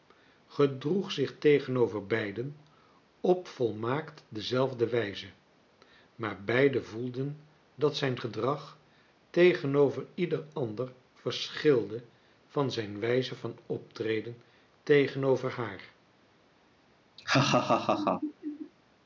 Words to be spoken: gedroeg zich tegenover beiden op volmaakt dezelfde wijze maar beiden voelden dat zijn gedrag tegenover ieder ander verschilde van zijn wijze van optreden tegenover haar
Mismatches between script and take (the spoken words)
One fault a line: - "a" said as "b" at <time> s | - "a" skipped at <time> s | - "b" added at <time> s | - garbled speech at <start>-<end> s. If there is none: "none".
none